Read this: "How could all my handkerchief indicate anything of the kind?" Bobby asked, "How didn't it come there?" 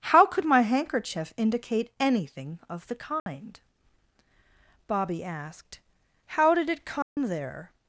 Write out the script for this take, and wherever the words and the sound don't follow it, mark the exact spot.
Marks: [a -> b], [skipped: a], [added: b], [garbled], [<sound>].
"How could [skipped: all] my handkerchief indicate anything of the kind?" [dropout] Bobby asked, "How [didn't -> did] it come [dropout] there?"